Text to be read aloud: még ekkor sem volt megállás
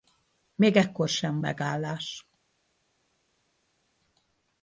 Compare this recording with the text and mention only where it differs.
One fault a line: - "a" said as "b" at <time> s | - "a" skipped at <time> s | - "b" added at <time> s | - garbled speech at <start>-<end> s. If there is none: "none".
- "volt" skipped at 1.4 s